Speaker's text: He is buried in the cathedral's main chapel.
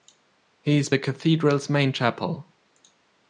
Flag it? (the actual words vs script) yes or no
yes